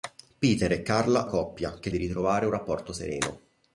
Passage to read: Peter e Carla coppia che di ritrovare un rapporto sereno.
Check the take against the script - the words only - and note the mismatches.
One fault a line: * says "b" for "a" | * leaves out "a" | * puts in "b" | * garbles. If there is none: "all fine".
all fine